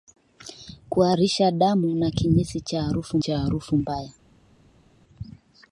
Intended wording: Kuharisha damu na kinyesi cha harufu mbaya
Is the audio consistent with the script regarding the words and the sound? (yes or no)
no